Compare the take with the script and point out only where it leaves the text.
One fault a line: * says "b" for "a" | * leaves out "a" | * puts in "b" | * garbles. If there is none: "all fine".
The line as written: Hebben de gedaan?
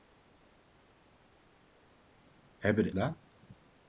all fine